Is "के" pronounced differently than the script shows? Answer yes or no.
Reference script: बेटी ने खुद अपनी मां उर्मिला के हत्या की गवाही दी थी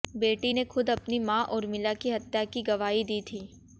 yes